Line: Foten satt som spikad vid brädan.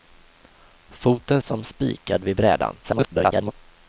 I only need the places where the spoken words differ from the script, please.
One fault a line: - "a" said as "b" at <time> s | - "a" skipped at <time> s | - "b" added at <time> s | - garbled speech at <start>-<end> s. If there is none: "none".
- "satt" skipped at 1.4 s
- garbled speech at 2.8-3.5 s